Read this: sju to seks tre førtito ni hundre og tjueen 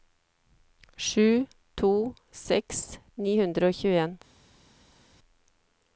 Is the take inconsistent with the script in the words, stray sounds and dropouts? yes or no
yes